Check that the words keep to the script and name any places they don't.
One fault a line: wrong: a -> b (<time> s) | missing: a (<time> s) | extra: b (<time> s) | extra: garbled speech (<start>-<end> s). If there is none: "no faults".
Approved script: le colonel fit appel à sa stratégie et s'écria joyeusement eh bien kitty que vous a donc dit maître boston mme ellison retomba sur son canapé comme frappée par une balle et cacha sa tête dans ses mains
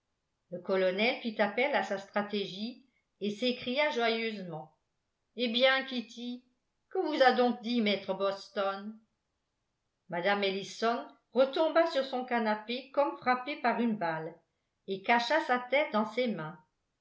no faults